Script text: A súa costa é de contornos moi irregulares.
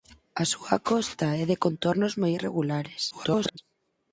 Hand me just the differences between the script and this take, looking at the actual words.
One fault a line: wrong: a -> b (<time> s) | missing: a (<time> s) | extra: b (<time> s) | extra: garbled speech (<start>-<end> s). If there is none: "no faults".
extra: garbled speech (3.1-3.6 s)